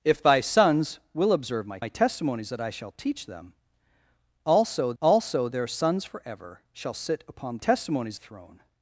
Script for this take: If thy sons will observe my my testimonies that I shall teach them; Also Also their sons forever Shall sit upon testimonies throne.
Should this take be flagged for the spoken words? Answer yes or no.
no